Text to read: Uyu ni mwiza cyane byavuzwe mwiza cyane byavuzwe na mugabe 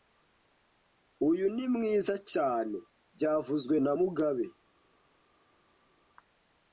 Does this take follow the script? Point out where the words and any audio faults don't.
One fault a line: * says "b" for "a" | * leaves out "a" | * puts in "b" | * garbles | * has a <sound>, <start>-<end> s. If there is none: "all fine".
* leaves out "mwiza cyane byavuzwe"